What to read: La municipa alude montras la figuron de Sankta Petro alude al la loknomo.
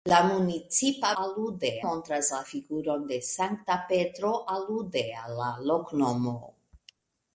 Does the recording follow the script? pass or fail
pass